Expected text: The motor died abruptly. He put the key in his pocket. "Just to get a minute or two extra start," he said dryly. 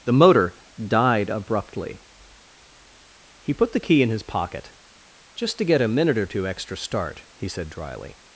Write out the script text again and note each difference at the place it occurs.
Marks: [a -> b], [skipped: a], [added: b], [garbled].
The motor died abruptly. He put the key in his pocket. "Just to get a minute or two extra start," he said dryly.